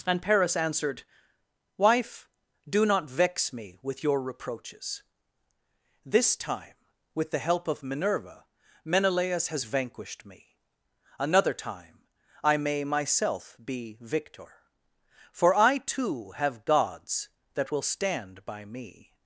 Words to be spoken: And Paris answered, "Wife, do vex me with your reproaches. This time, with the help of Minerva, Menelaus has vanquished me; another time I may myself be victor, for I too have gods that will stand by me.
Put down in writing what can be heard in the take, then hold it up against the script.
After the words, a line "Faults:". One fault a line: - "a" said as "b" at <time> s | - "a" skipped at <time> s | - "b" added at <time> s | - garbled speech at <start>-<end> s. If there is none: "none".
And Paris answered, "Wife, do not vex me with your reproaches. This time, with the help of Minerva, Menelaus has vanquished me; another time I may myself be victor, for I too have gods that will stand by me.
Faults:
- "not" added at 2.9 s